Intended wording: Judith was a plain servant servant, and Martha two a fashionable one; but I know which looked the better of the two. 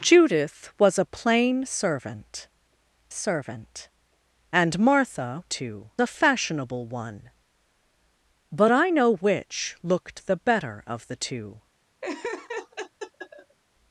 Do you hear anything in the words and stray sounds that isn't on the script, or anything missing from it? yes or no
yes